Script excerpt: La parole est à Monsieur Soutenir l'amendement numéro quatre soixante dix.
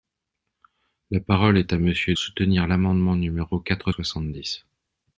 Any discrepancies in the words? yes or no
no